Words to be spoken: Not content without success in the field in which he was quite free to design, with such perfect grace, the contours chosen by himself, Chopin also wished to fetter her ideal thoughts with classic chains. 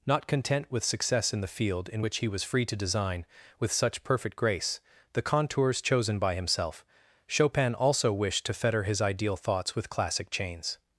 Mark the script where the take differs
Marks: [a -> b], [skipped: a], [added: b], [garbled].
Not content [without -> with] success in the field in which he was [skipped: quite] free to design, with such perfect grace, the contours chosen by himself, Chopin also wished to fetter [her -> his] ideal thoughts with classic chains.